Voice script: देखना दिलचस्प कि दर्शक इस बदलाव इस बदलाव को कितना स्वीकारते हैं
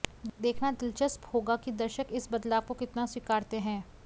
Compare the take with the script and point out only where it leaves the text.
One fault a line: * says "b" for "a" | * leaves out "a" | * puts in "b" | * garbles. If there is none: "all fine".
* puts in "होगा"
* leaves out "इस बदलाव"